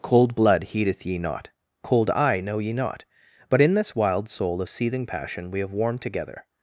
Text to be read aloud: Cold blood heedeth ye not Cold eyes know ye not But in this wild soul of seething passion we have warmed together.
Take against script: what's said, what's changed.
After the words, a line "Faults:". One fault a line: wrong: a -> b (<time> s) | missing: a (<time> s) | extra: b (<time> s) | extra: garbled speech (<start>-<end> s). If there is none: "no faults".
Cold blood heedeth ye not Cold eye know ye not But in this wild soul of seething passion we have warmed together.
Faults:
wrong: eyes -> eye (2.1 s)